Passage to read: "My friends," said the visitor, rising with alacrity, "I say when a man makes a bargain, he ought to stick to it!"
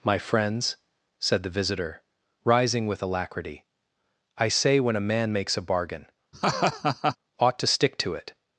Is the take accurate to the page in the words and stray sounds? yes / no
no